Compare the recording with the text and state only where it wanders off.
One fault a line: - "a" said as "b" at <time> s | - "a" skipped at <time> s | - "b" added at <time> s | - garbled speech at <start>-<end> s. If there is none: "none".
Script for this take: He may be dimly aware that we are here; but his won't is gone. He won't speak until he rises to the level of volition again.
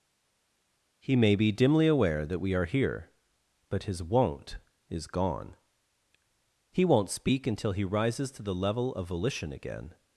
none